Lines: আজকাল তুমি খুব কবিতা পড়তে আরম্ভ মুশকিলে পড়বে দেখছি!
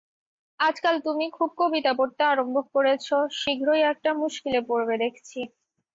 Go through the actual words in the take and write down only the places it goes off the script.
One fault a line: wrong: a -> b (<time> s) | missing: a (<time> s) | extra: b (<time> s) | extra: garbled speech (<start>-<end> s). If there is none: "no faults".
extra: করেছ শীঘ্রই একটা (2.7 s)